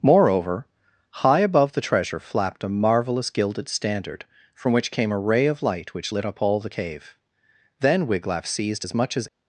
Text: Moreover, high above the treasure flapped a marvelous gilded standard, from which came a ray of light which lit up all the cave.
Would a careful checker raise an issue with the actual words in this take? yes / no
yes